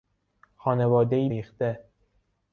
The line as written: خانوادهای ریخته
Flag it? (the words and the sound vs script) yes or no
no